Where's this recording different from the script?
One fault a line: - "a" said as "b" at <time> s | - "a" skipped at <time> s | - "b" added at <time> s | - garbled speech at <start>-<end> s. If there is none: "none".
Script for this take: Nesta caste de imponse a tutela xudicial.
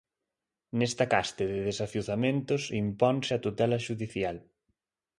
- "desafiuzamentos" added at 1.7 s